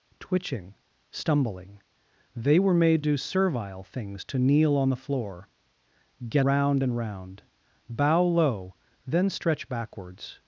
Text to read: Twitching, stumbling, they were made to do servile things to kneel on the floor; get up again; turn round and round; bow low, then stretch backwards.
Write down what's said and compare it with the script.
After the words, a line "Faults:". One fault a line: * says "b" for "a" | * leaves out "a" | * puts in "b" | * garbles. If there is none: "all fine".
Twitching, stumbling, they were made do servile things to kneel on the floor; get round and round; bow low, then stretch backwards.
Faults:
* leaves out "to"
* leaves out "up again turn"